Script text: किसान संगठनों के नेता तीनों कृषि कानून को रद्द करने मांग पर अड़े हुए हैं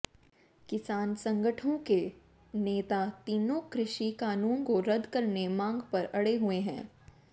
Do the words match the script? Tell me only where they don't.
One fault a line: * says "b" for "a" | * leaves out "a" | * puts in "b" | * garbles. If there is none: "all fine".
all fine